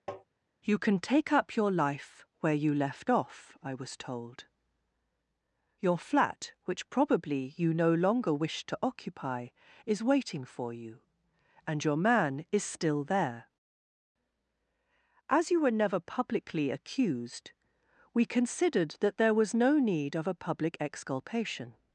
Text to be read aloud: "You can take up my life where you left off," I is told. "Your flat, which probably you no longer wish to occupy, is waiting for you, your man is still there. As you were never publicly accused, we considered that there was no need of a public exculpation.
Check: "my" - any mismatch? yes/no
yes